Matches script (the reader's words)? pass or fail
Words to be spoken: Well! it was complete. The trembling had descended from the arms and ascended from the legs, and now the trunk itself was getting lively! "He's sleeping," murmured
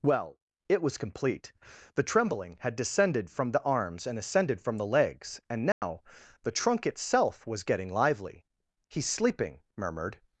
pass